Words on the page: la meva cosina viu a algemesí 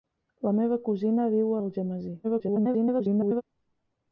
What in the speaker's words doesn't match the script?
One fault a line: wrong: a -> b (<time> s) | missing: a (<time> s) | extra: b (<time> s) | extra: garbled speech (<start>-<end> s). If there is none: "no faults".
extra: garbled speech (2.2-3.4 s)